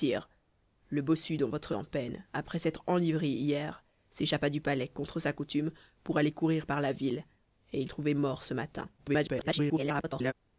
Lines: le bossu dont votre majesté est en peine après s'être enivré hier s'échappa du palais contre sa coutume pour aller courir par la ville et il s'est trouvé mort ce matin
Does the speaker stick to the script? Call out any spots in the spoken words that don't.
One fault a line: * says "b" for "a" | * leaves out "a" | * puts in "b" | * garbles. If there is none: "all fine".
* leaves out "majesté est"
* leaves out "s'est"
* garbles